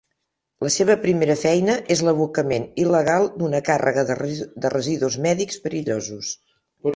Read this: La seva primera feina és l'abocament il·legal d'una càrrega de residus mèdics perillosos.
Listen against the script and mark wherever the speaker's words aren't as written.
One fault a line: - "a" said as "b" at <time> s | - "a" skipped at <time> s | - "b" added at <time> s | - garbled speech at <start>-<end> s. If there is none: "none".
none